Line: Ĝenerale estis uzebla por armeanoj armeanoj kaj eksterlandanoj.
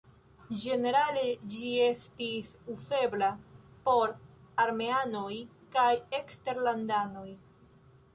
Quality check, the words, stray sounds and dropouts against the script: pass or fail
fail